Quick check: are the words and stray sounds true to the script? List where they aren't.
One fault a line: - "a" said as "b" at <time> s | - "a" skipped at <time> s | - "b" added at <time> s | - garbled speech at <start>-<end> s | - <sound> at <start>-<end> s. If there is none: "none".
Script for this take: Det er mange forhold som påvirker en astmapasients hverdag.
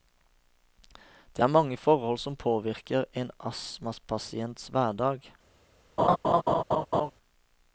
- laugh at 6.0-7.1 s